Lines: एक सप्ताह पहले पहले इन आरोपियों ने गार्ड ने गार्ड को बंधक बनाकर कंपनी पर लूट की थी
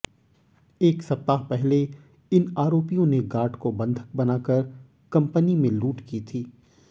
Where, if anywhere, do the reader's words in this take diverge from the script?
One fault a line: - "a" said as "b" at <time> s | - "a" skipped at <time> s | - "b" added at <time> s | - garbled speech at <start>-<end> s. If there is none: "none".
- "पहले" skipped at 1.8 s
- "ने गार्ड" skipped at 3.5 s
- "पर" said as "में" at 5.5 s